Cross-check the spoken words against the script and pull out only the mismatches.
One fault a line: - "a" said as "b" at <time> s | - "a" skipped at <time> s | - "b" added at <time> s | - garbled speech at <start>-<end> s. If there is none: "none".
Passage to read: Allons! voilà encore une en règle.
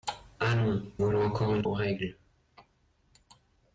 none